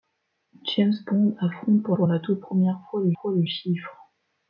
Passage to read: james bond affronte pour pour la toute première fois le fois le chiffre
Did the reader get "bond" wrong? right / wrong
right